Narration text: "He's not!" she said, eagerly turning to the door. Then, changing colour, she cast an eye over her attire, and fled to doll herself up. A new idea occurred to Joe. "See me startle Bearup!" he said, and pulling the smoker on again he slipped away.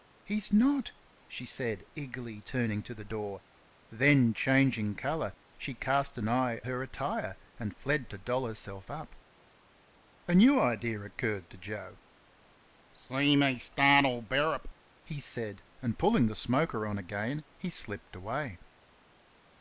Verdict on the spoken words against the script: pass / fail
fail